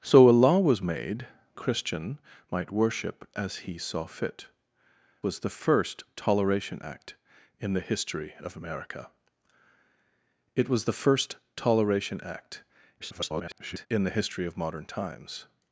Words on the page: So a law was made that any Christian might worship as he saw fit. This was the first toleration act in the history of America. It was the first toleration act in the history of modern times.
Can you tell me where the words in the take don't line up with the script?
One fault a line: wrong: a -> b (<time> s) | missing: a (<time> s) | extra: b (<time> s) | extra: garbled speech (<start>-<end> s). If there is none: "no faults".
missing: that any (1.3 s)
missing: This (4.5 s)
extra: garbled speech (13.0-13.9 s)